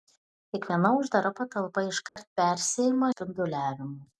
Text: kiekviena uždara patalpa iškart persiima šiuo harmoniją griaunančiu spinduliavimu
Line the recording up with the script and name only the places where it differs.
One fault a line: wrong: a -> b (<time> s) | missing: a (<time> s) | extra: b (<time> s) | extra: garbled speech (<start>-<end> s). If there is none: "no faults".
missing: šiuo harmoniją griaunančiu (3.1 s)